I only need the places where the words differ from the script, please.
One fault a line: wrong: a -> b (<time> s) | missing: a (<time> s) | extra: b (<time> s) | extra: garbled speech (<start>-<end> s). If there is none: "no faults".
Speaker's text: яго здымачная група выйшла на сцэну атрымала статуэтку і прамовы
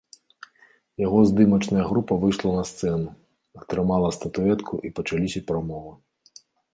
extra: пачаліся (5.0 s)